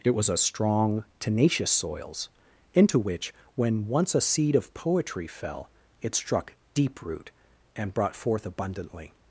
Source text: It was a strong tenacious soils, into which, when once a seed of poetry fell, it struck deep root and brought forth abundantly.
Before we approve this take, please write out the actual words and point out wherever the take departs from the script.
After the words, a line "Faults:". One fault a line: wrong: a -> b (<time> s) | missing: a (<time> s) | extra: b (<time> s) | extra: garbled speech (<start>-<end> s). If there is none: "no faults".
It was a strong tenacious soils, into which, when once a seed of poetry fell, it struck deep root and brought forth abundantly.
Faults:
no faults